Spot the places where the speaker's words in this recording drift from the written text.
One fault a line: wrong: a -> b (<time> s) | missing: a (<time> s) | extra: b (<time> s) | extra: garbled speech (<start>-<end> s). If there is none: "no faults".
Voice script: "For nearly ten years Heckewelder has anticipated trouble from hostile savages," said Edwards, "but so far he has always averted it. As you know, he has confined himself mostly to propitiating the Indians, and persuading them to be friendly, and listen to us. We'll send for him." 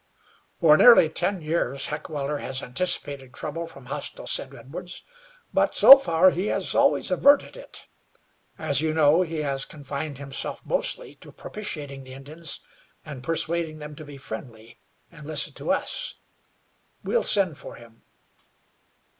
missing: savages (4.3 s)